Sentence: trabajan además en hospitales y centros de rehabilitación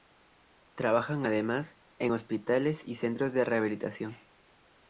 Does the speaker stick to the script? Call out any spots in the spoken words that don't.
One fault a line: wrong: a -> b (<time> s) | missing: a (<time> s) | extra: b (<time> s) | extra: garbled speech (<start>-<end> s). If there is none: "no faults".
no faults